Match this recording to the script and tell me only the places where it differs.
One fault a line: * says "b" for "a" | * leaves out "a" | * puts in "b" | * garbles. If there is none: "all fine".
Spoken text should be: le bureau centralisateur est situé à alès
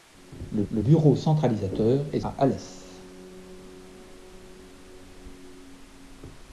* puts in "le"
* leaves out "situé"